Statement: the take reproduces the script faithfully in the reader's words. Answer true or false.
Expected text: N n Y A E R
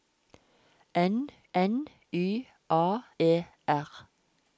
true